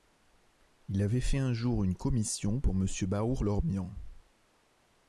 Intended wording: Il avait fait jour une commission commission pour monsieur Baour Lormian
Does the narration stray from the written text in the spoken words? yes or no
yes